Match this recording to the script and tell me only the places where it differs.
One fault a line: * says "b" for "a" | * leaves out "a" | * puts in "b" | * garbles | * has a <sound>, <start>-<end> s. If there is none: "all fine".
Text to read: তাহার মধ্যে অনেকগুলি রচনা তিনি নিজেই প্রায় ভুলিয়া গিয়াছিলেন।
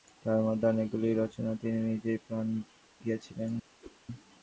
* leaves out "ভুলিয়া"
* has a whoosh, 3.8-4.0 s